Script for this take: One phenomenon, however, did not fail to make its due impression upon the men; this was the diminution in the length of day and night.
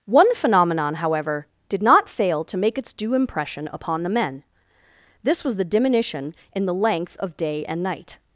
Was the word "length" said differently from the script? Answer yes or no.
no